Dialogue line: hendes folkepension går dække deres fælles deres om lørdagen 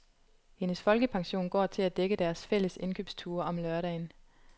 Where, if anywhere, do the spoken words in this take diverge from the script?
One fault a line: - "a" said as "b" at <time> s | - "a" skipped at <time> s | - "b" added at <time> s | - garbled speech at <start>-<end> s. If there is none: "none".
- "til at" added at 1.7 s
- "deres" said as "indkøbsture" at 2.8 s